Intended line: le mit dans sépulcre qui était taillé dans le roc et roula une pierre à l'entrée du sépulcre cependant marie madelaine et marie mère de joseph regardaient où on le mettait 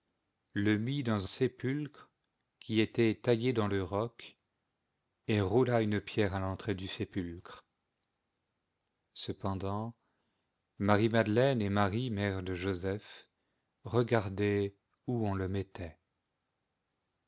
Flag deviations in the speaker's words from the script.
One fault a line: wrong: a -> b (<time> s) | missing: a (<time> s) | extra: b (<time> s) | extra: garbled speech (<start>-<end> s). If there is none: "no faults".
no faults